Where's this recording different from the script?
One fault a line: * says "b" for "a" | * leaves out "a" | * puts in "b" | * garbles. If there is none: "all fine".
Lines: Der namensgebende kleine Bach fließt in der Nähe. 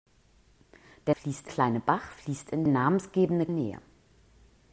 * says "fließt" for "namensgebende"
* says "namensgebende" for "der"